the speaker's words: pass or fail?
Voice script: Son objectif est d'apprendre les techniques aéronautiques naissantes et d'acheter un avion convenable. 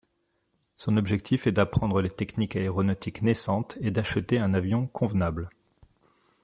pass